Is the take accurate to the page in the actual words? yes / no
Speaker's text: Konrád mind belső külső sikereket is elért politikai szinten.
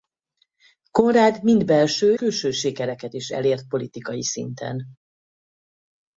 yes